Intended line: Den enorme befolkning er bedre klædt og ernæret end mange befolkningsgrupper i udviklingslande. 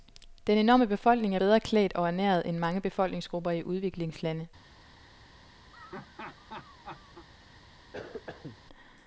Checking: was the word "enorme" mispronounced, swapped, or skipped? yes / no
no